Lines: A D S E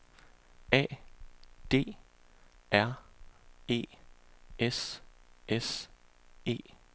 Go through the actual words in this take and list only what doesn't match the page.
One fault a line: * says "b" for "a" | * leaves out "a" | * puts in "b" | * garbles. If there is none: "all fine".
* puts in "R E S"